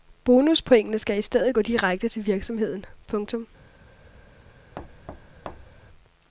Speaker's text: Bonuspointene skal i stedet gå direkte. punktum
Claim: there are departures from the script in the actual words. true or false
true